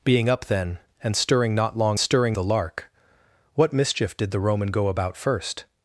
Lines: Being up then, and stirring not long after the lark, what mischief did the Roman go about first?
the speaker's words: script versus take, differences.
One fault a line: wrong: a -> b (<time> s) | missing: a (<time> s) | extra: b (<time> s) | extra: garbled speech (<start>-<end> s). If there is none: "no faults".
wrong: after -> stirring (2.0 s)